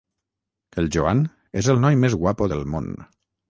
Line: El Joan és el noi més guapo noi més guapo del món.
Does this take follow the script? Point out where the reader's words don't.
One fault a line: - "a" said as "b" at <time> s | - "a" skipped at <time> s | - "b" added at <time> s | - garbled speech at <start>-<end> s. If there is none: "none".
- "noi més guapo" skipped at 2.5 s